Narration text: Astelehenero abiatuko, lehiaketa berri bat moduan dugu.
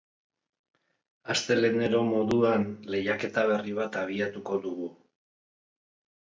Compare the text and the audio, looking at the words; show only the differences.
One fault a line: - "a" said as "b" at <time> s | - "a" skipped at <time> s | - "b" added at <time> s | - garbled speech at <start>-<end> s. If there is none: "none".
- "abiatuko" said as "moduan" at 2.1 s
- "moduan" said as "abiatuko" at 4.0 s